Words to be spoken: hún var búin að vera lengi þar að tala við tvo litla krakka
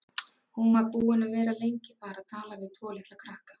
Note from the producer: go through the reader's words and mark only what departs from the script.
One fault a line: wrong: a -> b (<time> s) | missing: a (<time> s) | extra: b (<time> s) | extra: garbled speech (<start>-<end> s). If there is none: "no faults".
no faults